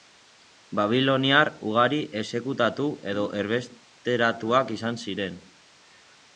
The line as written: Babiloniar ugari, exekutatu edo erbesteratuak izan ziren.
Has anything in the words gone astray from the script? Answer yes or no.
no